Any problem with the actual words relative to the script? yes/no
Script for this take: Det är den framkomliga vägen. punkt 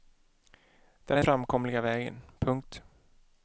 no